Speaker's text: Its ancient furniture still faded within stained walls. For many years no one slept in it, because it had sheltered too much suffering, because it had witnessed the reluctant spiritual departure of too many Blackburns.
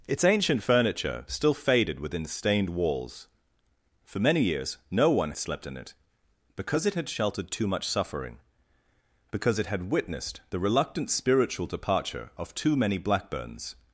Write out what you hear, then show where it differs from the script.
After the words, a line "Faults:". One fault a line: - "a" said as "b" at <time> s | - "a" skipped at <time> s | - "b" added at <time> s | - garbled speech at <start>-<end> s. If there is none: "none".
Its ancient furniture still faded within stained walls. For many years no one slept in it, because it had sheltered too much suffering, because it had witnessed the reluctant spiritual departure of too many Blackburns.
Faults:
none